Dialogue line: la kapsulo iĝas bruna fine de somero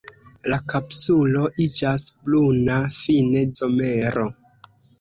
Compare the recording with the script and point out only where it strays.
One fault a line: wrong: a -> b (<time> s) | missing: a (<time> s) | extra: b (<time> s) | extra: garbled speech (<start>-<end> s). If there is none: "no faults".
missing: de (3.5 s)